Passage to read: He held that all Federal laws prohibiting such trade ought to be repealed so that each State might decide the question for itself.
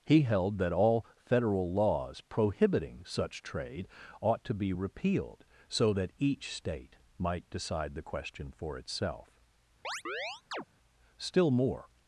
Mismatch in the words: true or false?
true